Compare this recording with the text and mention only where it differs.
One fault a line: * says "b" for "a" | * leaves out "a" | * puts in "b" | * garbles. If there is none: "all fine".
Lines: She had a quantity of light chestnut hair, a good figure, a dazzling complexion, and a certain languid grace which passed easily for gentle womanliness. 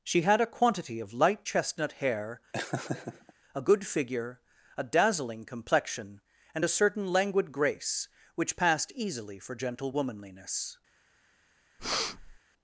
all fine